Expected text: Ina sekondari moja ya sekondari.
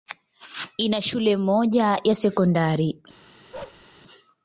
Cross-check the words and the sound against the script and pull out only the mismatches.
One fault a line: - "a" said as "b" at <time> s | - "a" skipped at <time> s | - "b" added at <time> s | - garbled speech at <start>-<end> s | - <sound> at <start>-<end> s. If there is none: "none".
- "sekondari" said as "shule" at 1.0 s
- bark at 3.5-3.9 s